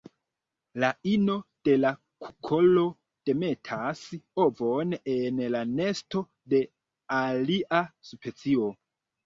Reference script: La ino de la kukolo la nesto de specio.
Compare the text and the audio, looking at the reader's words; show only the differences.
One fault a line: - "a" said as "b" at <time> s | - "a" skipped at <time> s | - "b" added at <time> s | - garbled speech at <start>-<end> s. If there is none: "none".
- "demetas ovon en" added at 3.3 s
- "alia" added at 7.2 s